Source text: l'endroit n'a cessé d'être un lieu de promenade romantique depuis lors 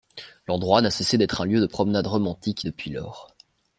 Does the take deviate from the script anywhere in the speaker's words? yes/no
no